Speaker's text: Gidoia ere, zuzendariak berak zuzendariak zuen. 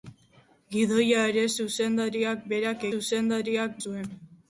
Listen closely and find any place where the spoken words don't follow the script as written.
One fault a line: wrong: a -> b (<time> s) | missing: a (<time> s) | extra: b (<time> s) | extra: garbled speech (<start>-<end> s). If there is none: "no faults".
no faults